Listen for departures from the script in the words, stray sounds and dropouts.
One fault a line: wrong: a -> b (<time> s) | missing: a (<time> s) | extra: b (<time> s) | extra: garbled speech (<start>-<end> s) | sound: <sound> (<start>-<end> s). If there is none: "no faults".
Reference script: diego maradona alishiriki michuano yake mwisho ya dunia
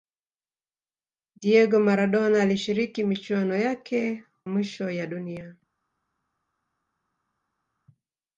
no faults